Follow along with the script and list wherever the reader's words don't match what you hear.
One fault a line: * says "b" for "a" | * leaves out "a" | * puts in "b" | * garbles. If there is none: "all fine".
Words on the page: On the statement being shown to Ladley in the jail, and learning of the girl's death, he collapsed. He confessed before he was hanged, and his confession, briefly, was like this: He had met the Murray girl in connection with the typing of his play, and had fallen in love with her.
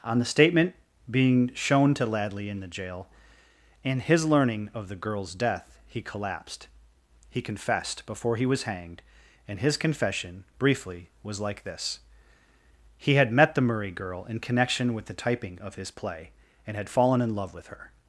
* puts in "his"